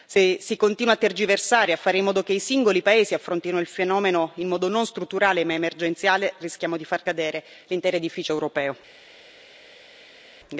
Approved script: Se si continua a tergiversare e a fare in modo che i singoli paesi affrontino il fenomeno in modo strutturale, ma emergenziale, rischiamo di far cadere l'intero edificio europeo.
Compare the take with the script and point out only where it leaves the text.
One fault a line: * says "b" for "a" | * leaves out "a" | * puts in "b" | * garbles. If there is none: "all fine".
* puts in "non"